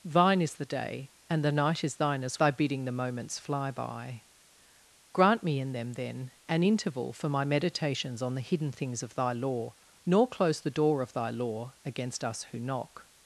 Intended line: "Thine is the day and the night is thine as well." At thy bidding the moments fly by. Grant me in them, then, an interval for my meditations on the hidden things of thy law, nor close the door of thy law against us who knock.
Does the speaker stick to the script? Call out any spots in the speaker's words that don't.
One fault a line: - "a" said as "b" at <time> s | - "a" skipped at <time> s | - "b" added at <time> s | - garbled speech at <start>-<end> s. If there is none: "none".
- "well At" skipped at 2.4 s